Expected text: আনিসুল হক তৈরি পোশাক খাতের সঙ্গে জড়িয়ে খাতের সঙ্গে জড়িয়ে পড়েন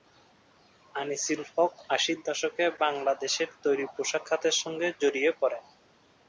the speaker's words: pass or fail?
fail